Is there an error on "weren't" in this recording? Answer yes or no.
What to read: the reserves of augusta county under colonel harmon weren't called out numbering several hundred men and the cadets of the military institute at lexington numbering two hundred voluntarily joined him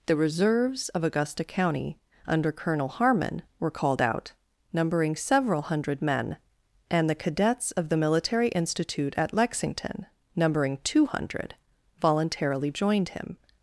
yes